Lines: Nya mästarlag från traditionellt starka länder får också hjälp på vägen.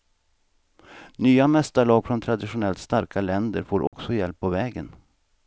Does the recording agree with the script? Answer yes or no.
yes